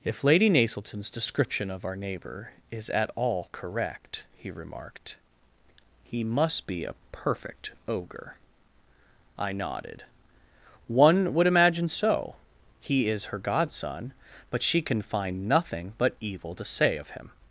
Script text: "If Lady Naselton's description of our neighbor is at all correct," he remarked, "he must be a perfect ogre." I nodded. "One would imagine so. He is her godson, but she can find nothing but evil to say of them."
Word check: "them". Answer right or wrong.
wrong